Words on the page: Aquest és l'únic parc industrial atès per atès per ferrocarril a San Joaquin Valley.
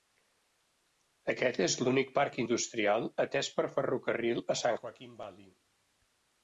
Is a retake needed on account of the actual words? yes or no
yes